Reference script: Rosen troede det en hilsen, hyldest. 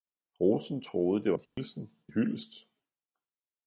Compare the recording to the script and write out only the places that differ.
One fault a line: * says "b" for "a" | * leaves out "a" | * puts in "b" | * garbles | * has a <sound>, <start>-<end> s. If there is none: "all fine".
* has a dropout, 1.5-1.6 s